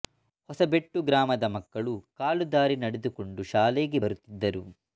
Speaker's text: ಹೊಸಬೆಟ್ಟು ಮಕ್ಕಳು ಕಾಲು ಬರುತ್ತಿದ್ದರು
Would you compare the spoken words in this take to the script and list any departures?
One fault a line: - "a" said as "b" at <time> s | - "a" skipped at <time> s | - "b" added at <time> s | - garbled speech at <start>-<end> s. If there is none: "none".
- "ಗ್ರಾಮದ" added at 1.1 s
- "ದಾರಿ ನಡೆದುಕೊಂಡು ಶಾಲೆಗೆ" added at 2.5 s